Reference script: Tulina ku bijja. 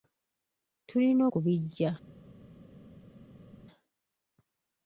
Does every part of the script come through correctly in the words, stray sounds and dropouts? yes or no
yes